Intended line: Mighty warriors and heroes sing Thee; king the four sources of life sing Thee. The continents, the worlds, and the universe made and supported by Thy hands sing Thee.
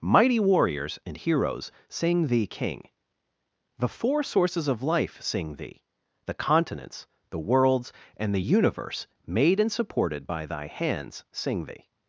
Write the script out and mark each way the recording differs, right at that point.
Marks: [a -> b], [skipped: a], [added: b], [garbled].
Mighty warriors and heroes sing Thee; king the four sources of life sing Thee. The continents, the worlds, and the universe made and supported by Thy hands sing Thee.